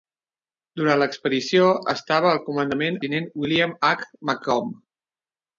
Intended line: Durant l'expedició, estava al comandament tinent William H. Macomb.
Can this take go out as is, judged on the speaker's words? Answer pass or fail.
pass